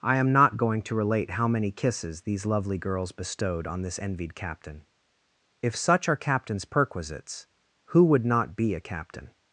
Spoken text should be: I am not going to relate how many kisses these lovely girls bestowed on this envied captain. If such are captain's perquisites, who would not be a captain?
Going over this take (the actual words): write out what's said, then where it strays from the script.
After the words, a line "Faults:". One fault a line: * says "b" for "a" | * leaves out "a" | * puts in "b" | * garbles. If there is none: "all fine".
I am not going to relate how many kisses these lovely girls bestowed on this envied captain. If such are captain's perquisites, who would not be a captain?
Faults:
all fine